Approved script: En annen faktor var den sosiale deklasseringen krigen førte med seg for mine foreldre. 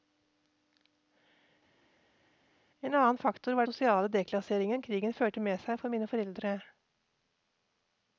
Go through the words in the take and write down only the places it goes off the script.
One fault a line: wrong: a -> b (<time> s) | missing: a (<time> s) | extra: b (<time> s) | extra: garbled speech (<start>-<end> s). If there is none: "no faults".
missing: den (3.7 s)